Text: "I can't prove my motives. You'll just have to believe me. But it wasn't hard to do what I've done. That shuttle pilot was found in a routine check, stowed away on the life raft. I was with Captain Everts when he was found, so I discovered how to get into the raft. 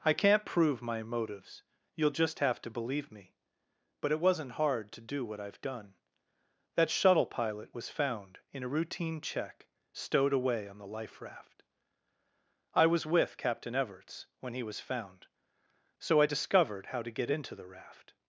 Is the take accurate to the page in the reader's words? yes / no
yes